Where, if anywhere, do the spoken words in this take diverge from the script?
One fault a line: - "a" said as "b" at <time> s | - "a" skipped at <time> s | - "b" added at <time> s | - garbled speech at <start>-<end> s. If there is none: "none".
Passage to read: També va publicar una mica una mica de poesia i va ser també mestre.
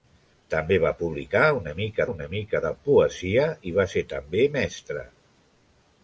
none